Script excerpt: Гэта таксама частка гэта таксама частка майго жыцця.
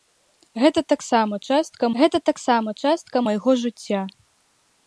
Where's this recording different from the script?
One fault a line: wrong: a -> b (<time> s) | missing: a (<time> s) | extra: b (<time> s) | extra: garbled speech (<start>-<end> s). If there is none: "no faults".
no faults